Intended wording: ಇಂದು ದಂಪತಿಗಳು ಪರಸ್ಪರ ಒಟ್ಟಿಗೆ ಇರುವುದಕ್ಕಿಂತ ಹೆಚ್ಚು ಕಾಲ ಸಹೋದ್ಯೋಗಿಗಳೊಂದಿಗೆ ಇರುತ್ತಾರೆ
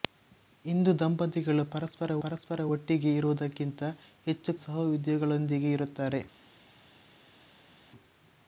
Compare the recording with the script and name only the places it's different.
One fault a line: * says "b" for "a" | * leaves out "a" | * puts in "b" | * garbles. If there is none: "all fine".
* puts in "ಪರಸ್ಪರ"
* leaves out "ಕಾಲ"